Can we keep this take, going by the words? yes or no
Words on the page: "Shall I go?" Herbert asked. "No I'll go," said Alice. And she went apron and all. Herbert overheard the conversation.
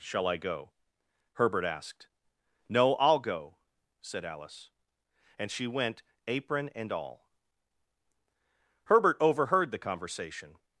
yes